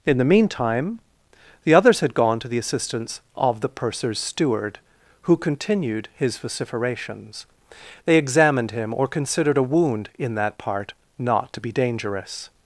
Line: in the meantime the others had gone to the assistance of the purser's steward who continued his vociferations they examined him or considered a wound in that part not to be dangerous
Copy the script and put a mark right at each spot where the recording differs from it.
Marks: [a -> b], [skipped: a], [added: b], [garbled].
in the meantime the others had gone to the assistance of the purser's steward who continued his vociferations they examined him or considered a wound in that part not to be dangerous